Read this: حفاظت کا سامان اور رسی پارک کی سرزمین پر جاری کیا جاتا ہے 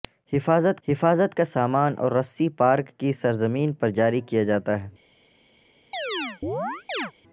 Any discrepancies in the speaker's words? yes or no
yes